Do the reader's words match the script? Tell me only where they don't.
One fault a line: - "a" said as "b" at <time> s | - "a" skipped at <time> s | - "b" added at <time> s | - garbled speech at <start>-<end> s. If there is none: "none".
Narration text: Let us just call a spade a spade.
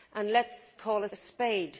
- "just" skipped at 0.8 s
- "spade" skipped at 1.1 s